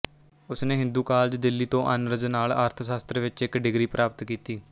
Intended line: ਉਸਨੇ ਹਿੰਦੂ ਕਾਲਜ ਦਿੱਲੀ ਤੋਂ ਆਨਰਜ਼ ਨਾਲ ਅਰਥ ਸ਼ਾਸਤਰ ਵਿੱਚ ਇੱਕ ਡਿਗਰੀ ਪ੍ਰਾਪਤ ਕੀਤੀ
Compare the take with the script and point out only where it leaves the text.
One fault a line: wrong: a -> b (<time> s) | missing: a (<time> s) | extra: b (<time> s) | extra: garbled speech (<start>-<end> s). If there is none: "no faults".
no faults